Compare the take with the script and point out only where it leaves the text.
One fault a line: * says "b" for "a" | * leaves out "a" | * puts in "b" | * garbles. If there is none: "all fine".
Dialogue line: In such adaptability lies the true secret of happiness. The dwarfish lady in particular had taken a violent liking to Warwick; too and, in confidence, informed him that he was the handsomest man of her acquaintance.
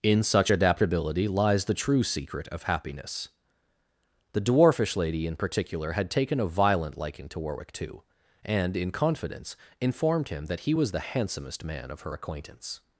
all fine